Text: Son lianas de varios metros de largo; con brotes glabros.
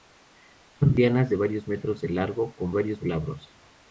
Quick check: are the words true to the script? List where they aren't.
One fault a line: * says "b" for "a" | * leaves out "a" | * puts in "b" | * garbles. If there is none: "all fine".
* says "varios" for "brotes"